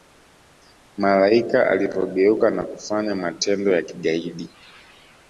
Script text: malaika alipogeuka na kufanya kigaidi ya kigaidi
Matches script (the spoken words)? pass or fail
fail